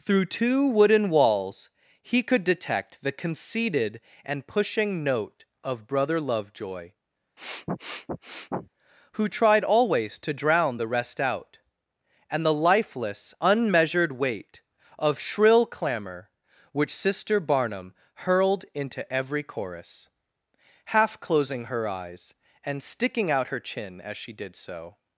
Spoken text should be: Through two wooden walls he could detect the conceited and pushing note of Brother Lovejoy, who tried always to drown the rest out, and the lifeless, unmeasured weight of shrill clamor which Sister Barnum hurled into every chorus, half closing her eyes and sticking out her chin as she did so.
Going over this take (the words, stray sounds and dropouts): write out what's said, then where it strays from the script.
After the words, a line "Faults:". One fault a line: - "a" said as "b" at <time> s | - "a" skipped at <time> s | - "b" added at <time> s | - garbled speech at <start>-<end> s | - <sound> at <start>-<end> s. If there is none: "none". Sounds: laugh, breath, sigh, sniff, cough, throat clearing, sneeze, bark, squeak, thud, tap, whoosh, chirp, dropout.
Through two wooden walls he could detect the conceited and pushing note of Brother Lovejoy, who tried always to drown the rest out, and the lifeless, unmeasured weight of shrill clamor which Sister Barnum hurled into every chorus, half closing her eyes and sticking out her chin as she did so.
Faults:
- sniff at 7.4-8.7 s